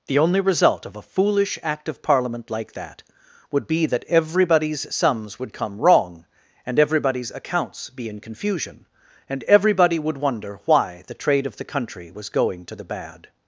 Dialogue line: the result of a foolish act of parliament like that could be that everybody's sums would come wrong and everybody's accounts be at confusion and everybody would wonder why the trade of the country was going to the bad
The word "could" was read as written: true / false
false